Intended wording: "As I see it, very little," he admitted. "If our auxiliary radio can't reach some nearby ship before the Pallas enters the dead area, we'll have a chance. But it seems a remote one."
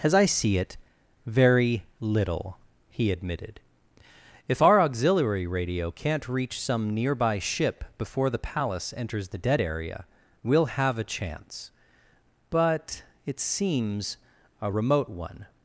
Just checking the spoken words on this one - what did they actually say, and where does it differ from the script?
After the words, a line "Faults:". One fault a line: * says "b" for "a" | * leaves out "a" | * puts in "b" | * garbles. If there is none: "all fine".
"As I see it, very little," he admitted. "If our auxiliary radio can't reach some nearby ship before the Pallas enters the dead area, we'll have a chance. But it seems a remote one."
Faults:
all fine